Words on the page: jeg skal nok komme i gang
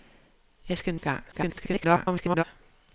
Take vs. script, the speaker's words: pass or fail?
fail